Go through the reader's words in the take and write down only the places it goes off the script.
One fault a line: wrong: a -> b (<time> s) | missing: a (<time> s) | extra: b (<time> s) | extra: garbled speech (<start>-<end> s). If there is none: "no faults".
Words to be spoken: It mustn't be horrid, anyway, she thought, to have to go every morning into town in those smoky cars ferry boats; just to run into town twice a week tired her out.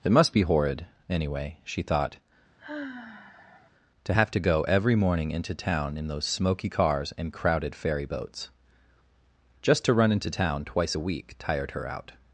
wrong: mustn't -> must (0.1 s)
extra: and crowded (7.2 s)